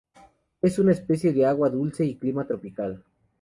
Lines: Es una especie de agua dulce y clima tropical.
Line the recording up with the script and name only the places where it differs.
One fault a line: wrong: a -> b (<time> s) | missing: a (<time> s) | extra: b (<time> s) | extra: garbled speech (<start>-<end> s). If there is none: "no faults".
no faults